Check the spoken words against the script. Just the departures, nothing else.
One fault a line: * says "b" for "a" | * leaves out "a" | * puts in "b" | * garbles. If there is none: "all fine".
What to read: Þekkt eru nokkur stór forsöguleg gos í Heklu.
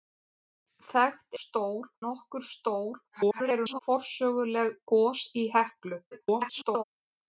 * says "stór" for "eru"
* garbles
* garbles